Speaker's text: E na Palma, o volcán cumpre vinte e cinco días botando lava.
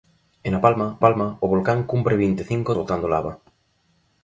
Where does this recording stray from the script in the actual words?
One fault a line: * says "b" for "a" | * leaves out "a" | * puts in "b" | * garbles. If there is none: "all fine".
* puts in "Palma"
* leaves out "días"